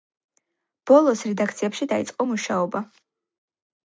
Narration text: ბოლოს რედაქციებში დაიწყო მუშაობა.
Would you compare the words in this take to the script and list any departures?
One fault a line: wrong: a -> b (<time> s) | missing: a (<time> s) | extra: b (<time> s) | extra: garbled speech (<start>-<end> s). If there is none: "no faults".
no faults